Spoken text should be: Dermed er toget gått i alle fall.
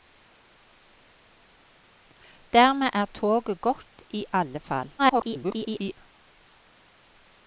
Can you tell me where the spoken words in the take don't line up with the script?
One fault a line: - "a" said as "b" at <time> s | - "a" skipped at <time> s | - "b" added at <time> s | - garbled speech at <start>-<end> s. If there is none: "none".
- garbled speech at 5.0-6.0 s